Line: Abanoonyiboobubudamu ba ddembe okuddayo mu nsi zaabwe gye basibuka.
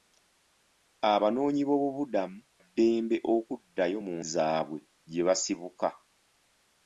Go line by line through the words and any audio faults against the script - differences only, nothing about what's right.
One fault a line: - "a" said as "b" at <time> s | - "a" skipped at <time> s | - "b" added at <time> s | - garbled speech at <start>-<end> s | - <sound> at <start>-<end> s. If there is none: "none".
- "ba" skipped at 2.4 s
- "nsi" skipped at 4.2 s